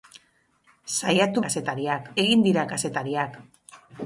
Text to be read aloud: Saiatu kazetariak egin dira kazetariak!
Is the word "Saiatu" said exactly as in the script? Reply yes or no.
yes